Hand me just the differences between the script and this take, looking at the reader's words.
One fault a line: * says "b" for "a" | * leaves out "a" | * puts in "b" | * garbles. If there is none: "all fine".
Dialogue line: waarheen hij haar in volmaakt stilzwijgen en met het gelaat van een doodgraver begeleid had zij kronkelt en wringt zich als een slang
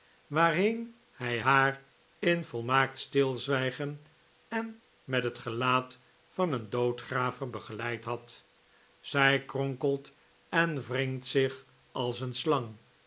all fine